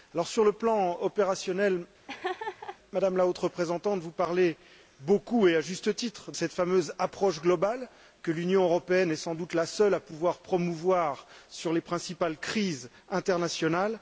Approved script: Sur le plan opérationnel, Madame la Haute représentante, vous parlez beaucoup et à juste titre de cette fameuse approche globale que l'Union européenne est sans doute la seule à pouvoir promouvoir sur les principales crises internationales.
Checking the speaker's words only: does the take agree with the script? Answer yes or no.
no